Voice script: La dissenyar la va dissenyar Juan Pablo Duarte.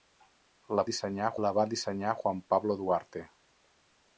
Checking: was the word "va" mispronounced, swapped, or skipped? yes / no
no